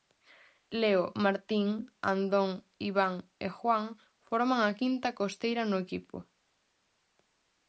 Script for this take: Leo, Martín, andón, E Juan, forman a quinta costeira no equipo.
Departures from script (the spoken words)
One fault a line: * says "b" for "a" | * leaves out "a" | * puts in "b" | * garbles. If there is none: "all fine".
* puts in "Iván"